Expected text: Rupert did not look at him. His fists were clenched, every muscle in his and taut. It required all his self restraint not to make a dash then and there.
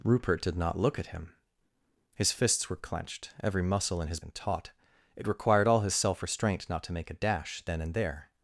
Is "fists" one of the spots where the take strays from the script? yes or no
no